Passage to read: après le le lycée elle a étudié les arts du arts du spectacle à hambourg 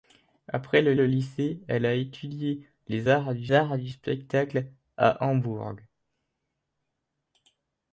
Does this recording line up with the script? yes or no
yes